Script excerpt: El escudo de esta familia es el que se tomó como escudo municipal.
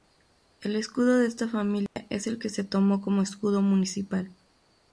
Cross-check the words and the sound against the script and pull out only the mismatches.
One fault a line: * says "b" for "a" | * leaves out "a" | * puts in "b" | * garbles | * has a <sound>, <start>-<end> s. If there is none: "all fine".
* has a dropout, 1.9-2.0 s